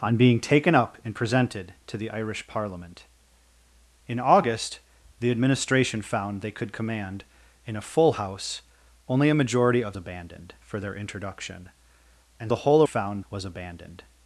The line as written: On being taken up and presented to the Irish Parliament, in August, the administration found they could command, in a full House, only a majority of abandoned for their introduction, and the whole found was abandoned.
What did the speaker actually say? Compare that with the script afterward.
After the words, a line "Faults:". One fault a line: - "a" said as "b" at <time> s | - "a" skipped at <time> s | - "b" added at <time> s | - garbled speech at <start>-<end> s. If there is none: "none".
On being taken up and presented to the Irish Parliament, in August, the administration found they could command, in a full House, only a majority of abandoned for their introduction, and the whole found was abandoned.
Faults:
none